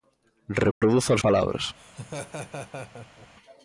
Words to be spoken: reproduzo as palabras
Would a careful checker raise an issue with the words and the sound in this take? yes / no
yes